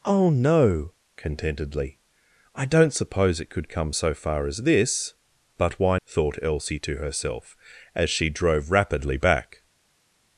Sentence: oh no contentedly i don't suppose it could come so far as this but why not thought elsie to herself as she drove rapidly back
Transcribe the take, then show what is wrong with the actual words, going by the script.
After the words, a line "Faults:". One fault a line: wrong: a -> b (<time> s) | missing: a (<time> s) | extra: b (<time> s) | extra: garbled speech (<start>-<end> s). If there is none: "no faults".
oh no contentedly i don't suppose it could come so far as this but why thought elsie to herself as she drove rapidly back
Faults:
missing: not (6.0 s)